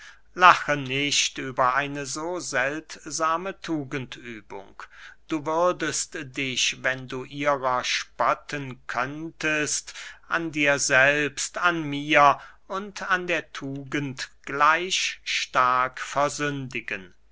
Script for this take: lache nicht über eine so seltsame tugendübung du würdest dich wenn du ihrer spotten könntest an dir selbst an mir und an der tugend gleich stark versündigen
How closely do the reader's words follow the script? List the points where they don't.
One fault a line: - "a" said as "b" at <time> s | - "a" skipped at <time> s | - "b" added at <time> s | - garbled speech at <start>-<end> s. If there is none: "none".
none